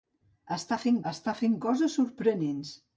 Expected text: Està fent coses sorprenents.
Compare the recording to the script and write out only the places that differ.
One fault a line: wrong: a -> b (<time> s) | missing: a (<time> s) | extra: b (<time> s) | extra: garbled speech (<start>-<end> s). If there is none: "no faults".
extra: està fent (1.1 s)